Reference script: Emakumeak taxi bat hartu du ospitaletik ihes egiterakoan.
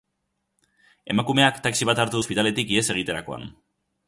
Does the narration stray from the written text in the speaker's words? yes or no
yes